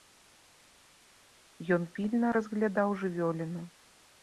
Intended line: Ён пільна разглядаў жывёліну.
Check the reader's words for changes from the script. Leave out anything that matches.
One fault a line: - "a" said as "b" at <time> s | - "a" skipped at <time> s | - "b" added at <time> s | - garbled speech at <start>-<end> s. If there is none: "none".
none